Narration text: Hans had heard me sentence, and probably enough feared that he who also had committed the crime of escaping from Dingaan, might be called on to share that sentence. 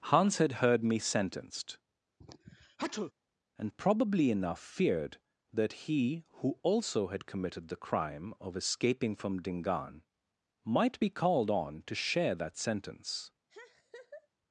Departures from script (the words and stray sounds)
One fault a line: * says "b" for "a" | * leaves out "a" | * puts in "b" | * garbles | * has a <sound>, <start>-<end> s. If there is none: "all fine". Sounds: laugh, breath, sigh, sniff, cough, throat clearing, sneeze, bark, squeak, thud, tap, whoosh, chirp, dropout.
* says "sentenced" for "sentence"
* has a sneeze, 2.2-3.1 s
* has a laugh, 13.5-14.3 s